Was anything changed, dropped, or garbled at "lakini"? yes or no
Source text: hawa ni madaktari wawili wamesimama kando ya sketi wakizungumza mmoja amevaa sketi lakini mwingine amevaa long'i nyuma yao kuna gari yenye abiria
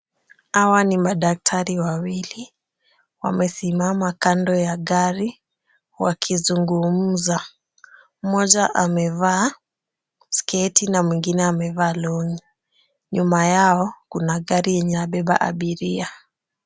yes